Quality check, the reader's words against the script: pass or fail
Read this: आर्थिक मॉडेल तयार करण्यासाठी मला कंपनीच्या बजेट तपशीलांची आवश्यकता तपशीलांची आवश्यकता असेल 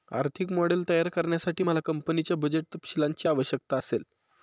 fail